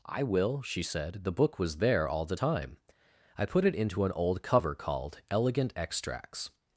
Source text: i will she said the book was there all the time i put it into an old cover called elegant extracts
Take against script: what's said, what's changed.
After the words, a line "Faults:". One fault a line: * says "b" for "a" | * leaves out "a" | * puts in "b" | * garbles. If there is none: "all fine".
i will she said the book was there all the time i put it into an old cover called elegant extracts
Faults:
all fine